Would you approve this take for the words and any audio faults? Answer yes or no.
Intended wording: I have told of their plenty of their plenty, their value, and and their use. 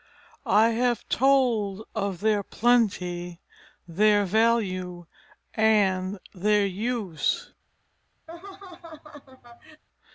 no